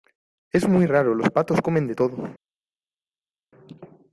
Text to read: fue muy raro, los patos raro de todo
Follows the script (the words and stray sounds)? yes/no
no